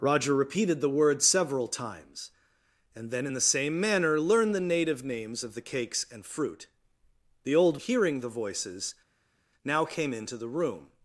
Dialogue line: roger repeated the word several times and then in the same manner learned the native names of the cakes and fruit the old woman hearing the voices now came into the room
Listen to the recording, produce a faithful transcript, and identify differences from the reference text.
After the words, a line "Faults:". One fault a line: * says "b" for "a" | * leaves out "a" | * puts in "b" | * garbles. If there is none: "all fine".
roger repeated the word several times and then in the same manner learned the native names of the cakes and fruit the old hearing the voices now came into the room
Faults:
* leaves out "woman"